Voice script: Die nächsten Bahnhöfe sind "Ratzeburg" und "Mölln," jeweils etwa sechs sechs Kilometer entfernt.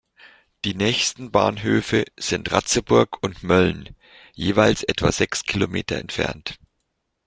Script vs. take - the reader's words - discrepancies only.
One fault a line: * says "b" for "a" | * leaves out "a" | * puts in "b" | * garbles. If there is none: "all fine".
* leaves out "sechs"